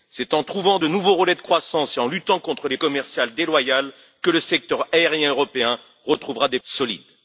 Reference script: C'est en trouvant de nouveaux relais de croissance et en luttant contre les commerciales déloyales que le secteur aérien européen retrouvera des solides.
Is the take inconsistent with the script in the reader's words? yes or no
no